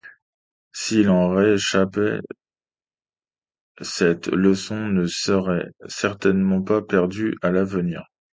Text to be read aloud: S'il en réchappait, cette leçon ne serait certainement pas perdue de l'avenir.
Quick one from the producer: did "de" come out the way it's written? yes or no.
no